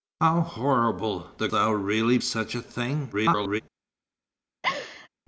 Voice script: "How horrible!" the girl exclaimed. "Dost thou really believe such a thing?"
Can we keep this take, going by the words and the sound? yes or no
no